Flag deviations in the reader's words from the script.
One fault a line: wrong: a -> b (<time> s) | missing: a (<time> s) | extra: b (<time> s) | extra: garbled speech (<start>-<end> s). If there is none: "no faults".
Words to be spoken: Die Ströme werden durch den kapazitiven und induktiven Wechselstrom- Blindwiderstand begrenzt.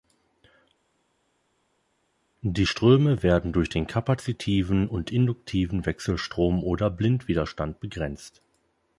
extra: oder (6.6 s)